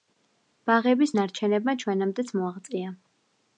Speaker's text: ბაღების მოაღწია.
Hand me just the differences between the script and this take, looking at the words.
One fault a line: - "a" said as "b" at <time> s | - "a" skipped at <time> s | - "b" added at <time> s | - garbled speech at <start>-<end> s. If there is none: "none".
- "ნარჩენებმა ჩვენამდეც" added at 1.2 s